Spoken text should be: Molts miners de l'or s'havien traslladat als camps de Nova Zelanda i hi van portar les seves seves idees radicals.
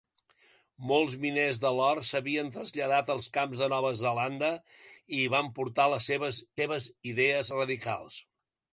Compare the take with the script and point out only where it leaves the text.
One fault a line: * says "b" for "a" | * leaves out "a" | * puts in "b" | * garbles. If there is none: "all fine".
all fine